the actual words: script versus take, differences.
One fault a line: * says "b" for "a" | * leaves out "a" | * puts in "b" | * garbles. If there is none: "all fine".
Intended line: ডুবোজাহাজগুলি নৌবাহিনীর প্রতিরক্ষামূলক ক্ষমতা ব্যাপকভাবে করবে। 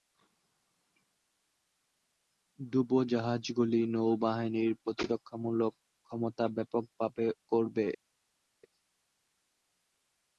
all fine